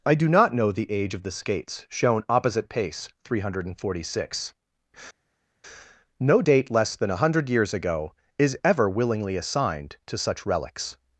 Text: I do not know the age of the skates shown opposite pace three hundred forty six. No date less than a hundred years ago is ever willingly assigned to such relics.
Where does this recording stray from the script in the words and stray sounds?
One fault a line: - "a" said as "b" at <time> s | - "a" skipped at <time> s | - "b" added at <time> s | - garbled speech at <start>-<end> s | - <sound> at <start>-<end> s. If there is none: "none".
none